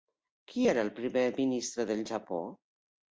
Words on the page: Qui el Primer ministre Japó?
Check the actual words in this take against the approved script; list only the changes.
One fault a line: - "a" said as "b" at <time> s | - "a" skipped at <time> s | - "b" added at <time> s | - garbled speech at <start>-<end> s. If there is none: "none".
- "era" added at 0.7 s
- "del" added at 1.9 s